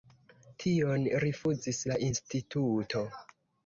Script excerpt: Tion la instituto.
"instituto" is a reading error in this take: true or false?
false